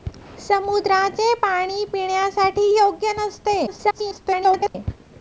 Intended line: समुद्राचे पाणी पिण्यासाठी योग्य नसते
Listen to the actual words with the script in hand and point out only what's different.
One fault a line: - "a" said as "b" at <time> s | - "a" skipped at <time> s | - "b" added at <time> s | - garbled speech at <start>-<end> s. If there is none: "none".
- garbled speech at 3.7-4.8 s